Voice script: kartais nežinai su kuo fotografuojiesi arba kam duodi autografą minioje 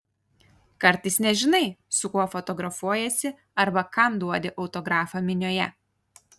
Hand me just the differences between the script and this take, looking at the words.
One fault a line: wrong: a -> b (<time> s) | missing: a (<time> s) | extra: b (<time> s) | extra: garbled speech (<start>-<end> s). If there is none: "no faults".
no faults